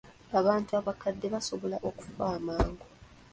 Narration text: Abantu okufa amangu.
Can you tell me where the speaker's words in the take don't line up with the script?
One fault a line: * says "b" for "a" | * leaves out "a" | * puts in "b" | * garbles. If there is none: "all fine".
* puts in "abakadde basobola"